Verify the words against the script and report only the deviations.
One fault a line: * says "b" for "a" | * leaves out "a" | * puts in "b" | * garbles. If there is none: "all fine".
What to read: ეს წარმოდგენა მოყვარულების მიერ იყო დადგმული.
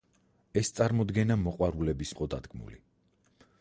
* leaves out "მიერ"